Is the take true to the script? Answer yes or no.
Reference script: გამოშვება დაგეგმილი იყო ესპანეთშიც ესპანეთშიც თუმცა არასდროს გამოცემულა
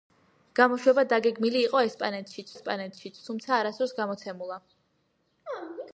yes